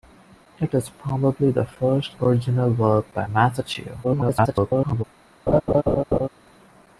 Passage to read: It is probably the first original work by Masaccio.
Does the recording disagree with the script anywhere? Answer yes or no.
yes